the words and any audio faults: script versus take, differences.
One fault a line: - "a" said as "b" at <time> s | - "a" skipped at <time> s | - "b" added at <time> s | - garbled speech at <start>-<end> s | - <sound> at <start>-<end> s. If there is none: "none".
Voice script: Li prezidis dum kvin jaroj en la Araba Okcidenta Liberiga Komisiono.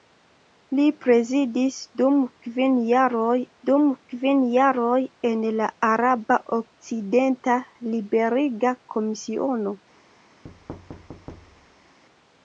- "dum kvin jaroj" added at 3.7 s
- thud at 10.4-12.0 s